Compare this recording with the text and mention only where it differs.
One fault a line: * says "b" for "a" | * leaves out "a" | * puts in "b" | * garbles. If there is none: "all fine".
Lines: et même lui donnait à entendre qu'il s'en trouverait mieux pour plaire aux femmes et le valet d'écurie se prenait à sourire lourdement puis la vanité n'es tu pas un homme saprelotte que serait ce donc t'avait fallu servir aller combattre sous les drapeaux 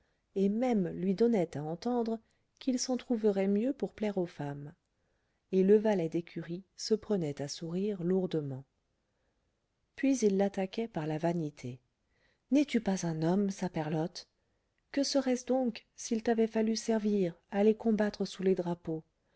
* puts in "il l'attaquait par"
* puts in "s'il"